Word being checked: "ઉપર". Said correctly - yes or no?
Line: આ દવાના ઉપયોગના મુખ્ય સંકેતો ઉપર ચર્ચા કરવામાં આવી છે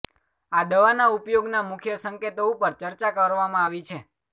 yes